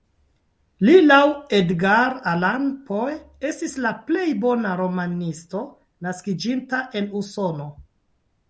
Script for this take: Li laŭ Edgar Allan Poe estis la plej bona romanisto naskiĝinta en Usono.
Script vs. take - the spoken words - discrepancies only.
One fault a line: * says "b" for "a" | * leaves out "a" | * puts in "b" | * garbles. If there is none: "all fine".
all fine